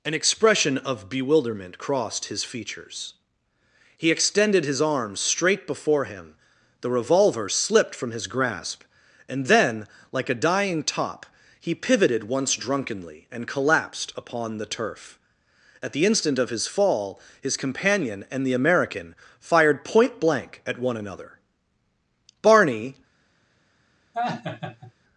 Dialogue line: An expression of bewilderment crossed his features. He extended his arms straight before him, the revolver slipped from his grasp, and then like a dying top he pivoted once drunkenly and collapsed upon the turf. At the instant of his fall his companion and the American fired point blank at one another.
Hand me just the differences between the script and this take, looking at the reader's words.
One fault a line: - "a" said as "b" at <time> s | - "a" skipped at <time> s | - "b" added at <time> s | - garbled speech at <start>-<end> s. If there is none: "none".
- "Barney" added at 22.4 s